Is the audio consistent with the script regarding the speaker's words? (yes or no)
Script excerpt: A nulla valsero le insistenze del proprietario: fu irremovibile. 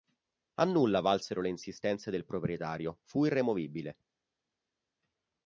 yes